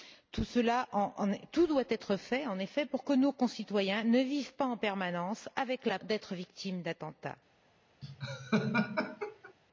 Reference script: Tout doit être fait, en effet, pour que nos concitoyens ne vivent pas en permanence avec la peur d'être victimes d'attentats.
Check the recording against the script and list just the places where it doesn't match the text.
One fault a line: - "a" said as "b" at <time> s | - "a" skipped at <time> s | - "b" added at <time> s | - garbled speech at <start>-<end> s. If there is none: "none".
- "peur" skipped at 6.0 s